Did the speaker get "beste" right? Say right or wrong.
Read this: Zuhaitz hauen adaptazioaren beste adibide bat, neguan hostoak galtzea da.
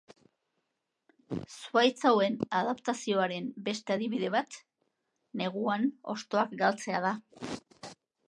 right